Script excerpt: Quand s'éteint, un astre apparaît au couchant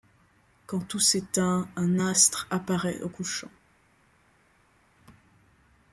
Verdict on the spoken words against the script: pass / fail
fail